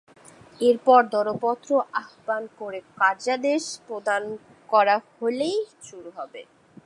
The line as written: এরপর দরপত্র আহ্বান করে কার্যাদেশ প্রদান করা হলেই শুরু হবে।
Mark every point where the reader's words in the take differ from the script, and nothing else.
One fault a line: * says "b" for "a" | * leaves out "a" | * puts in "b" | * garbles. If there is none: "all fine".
all fine